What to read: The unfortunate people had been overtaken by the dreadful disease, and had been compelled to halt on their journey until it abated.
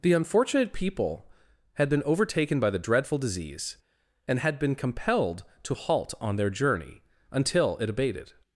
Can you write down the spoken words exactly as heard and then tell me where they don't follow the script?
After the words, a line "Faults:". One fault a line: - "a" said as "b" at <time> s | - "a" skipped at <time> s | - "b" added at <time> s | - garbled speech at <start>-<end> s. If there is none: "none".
The unfortunate people had been overtaken by the dreadful disease, and had been compelled to halt on their journey until it abated.
Faults:
none